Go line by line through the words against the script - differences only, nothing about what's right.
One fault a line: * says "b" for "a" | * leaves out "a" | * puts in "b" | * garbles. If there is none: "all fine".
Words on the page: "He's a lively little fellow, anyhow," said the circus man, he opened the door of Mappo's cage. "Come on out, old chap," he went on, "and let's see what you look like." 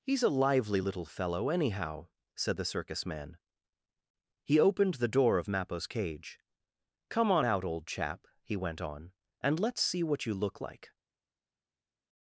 all fine